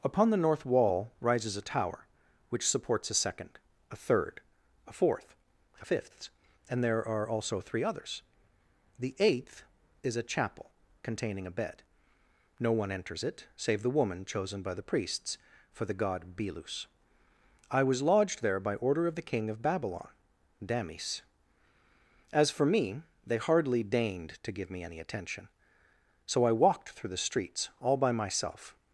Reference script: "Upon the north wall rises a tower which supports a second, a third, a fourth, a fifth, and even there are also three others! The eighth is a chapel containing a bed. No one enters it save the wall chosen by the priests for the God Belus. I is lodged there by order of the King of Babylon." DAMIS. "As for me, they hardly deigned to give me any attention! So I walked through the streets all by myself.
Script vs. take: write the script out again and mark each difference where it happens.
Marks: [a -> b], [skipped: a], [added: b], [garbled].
"Upon the north wall rises a tower which supports a second, a third, a fourth, a fifth, and [skipped: even] there are also three others! The eighth is a chapel containing a bed. No one enters it save the [wall -> woman] chosen by the priests for the God Belus. I [is -> was] lodged there by order of the King of Babylon." DAMIS. "As for me, they hardly deigned to give me any attention! So I walked through the streets all by myself.